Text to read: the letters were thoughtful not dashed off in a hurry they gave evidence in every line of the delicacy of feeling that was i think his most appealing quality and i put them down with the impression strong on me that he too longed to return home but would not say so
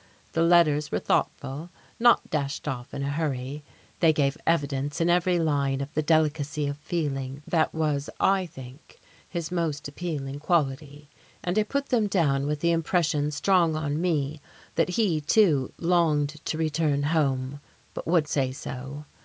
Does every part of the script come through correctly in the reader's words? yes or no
no